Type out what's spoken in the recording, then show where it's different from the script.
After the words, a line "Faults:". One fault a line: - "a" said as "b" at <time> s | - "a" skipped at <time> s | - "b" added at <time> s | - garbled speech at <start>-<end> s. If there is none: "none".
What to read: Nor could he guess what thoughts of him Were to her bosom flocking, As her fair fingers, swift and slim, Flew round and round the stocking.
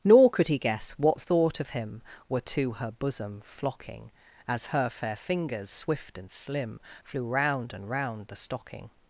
Nor could he guess what thought of him Were to her bosom flocking, As her fair fingers, swift and slim, Flew round and round the stocking.
Faults:
- "thoughts" said as "thought" at 1.2 s